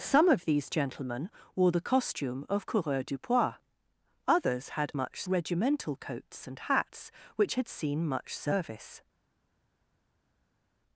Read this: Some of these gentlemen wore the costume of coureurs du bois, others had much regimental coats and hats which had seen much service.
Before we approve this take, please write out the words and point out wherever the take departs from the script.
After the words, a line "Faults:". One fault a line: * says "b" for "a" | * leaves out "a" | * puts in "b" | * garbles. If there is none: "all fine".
Some of these gentlemen wore the costume of coureurs du bois, others had much regimental coats and hats which had seen much service.
Faults:
all fine